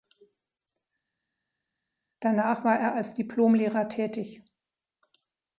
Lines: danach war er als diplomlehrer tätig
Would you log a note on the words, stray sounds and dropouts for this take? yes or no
no